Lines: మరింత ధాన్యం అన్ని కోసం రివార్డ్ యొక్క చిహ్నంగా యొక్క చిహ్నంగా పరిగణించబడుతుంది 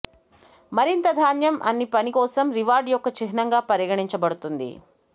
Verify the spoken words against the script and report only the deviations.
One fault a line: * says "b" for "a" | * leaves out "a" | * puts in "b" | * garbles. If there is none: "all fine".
* puts in "పని"
* leaves out "యొక్క చిహ్నంగా"